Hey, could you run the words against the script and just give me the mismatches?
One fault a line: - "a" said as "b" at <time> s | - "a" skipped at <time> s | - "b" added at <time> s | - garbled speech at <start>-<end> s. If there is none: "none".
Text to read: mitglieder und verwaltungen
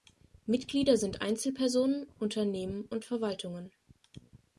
- "sind einzelpersonen unternehmen" added at 1.0 s